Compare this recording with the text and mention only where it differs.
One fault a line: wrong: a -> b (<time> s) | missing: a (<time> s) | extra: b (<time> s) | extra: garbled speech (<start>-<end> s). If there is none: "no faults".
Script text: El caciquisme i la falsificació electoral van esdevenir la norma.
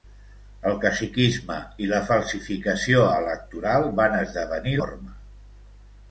missing: la (4.8 s)